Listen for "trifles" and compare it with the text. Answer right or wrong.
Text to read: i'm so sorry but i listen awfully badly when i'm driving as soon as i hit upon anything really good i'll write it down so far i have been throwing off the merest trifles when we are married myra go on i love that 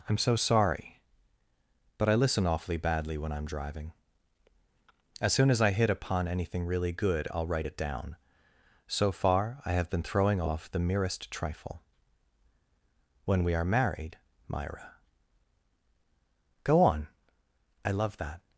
wrong